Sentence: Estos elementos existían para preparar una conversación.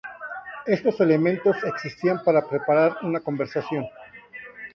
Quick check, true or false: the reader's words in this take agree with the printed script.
true